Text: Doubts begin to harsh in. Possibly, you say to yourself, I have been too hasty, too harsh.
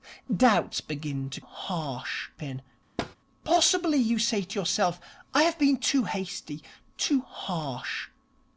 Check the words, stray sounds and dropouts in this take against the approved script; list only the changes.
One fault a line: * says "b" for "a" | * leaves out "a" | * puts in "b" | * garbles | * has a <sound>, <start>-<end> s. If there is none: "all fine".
* has a thud, 3.0-3.2 s